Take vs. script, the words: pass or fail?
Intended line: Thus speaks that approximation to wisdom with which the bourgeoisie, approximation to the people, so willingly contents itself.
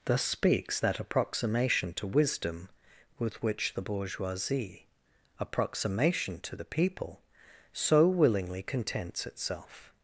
pass